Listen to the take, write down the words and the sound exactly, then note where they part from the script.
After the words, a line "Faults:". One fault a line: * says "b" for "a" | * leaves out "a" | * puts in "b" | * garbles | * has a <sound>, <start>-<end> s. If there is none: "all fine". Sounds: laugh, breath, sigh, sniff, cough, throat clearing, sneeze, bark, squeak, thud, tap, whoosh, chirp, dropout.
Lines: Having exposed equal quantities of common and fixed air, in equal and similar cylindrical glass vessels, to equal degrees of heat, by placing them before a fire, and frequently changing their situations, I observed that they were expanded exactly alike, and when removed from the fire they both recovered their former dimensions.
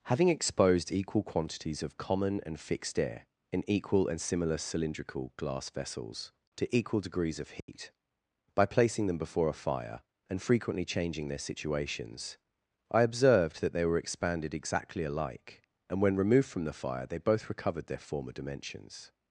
Having exposed equal quantities of common and fixed air, in equal and similar cylindrical glass vessels, to equal degrees of heat, by placing them before a fire, and frequently changing their situations, I observed that they were expanded exactly alike, and when removed from the fire they both recovered their former dimensions.
Faults:
* has a dropout, 7.6-7.7 s